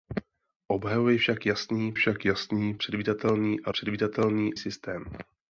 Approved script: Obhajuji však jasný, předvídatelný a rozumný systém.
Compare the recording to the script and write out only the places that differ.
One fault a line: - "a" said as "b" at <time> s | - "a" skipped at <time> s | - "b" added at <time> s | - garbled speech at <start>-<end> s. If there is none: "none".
- "však jasný" added at 1.9 s
- "rozumný" said as "předvídatelný" at 3.7 s